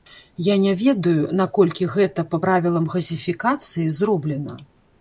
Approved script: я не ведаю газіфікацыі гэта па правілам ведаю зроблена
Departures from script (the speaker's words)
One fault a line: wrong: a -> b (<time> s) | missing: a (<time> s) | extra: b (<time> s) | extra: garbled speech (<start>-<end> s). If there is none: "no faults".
wrong: газіфікацыі -> наколькі (1.4 s)
wrong: ведаю -> газіфікацыі (3.0 s)